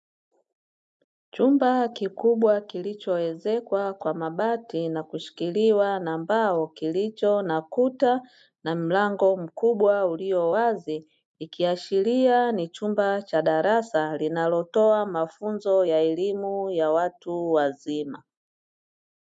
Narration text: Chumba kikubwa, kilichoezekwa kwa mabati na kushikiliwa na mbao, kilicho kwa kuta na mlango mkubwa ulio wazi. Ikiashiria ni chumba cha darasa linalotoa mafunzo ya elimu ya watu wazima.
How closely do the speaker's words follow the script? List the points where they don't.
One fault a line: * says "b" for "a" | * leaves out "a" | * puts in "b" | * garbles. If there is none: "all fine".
* says "na" for "kwa"